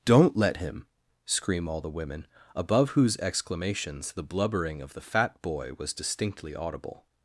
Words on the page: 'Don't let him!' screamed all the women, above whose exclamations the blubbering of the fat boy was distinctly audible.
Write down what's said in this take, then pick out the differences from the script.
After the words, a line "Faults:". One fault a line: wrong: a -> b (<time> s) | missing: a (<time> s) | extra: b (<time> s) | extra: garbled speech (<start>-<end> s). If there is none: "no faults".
'Don't let him!' scream all the women, above whose exclamations the blubbering of the fat boy was distinctly audible.
Faults:
wrong: screamed -> scream (1.2 s)